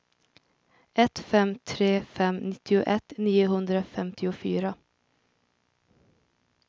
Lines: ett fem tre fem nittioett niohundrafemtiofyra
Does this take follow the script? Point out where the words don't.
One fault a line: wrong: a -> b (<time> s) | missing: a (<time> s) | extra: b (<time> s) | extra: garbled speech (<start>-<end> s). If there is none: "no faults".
no faults